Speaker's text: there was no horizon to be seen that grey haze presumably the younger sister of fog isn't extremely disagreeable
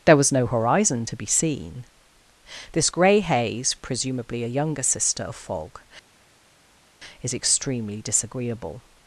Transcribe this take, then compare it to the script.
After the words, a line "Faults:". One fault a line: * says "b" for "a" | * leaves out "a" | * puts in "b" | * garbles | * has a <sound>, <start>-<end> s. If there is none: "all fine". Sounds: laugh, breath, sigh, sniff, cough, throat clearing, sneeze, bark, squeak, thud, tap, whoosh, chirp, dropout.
there was no horizon to be seen this grey haze presumably a younger sister of fog is extremely disagreeable
Faults:
* says "this" for "that"
* says "a" for "the"
* says "is" for "isn't"